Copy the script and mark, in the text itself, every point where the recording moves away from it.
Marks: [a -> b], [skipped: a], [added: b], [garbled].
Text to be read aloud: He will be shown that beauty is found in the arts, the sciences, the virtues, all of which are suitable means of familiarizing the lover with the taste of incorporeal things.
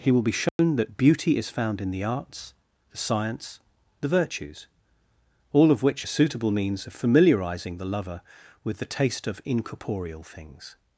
He will be shown that beauty is found in the arts, the [sciences, -> science] the virtues, all of which are suitable means of familiarizing the lover with the taste of incorporeal things.